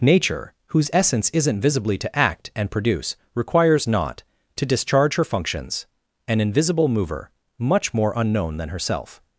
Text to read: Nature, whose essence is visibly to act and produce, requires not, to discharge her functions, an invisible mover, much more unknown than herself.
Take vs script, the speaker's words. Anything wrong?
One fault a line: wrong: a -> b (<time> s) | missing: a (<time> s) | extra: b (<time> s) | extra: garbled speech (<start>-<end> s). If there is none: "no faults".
wrong: is -> isn't (1.3 s)